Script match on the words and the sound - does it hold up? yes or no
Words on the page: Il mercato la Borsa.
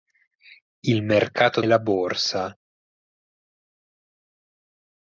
yes